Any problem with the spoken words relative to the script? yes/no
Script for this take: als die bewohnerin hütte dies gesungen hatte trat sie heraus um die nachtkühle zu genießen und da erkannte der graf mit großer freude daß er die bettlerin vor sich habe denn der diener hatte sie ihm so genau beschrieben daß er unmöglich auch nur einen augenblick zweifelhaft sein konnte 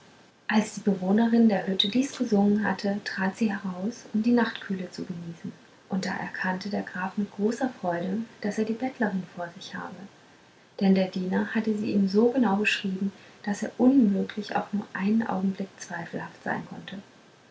yes